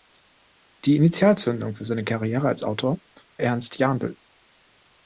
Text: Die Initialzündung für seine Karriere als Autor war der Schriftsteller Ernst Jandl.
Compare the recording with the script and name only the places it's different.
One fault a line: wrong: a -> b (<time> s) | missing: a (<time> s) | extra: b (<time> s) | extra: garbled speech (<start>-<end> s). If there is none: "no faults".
missing: war der Schriftsteller (3.0 s)